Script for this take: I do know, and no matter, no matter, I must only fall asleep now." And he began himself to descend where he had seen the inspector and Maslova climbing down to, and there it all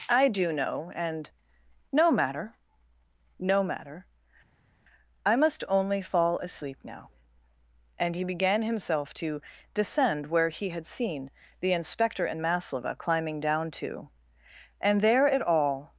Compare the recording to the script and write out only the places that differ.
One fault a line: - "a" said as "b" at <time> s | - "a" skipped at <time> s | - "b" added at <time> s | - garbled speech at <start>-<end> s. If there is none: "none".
none